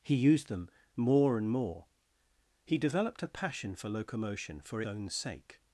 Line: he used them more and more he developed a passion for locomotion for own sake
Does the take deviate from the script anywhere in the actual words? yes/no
no